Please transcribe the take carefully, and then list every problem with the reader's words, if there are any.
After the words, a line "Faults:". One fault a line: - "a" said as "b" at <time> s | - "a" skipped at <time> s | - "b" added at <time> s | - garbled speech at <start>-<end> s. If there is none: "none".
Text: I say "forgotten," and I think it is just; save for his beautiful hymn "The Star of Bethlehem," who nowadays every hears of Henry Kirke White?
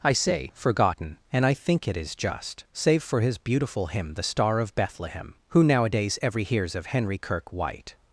I say "forgotten," and I think it is just; save for his beautiful hymn "The Star of Bethlehem," who nowadays every hears of Henry Kirke White?
Faults:
none